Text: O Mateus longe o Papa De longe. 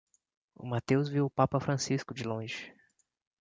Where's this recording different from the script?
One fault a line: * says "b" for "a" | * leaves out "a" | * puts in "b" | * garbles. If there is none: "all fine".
* says "viu" for "longe"
* puts in "Francisco"